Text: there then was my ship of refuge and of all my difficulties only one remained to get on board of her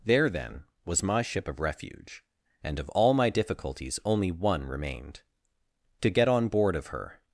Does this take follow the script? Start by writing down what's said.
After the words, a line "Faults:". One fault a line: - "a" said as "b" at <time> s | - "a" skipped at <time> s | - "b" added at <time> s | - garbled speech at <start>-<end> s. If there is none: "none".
there then was my ship of refuge and of all my difficulties only one remained to get on board of her
Faults:
none